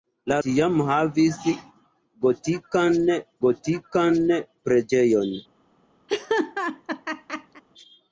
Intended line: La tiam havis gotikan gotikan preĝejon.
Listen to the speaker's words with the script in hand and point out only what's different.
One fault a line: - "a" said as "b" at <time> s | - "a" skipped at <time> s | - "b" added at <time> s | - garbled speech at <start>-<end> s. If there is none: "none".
none